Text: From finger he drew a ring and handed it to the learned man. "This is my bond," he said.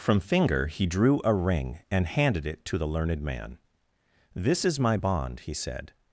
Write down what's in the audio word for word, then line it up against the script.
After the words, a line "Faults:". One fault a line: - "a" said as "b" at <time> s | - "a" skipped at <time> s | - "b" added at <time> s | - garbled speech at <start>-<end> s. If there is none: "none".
From finger he drew a ring and handed it to the learned man. "This is my bond," he said.
Faults:
none